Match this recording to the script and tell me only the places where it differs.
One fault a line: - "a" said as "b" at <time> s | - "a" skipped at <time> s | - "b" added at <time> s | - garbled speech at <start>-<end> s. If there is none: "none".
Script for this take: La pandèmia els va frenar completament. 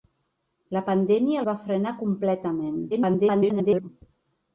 - "els" skipped at 1.4 s
- garbled speech at 2.9-3.9 s